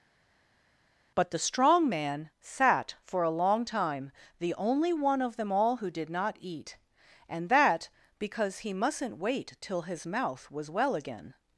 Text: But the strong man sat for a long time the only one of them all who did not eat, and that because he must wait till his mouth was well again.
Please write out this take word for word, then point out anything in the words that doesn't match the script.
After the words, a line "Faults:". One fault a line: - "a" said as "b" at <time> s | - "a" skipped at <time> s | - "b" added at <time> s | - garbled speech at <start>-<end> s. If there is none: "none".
But the strong man sat for a long time the only one of them all who did not eat, and that because he mustn't wait till his mouth was well again.
Faults:
- "must" said as "mustn't" at 8.7 s